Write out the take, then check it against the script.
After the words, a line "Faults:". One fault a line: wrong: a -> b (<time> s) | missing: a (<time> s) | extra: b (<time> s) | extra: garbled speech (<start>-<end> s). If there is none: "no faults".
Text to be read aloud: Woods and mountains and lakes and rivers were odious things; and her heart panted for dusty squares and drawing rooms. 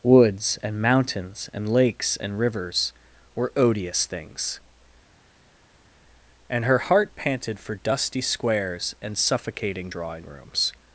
Woods and mountains and lakes and rivers were odious things; and her heart panted for dusty squares and suffocating drawing rooms.
Faults:
extra: suffocating (9.2 s)